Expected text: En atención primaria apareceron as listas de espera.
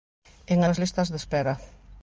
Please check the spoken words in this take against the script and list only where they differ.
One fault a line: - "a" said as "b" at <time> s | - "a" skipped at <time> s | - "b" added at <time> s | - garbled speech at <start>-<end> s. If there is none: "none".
- "atención primaria apareceron" skipped at 0.6 s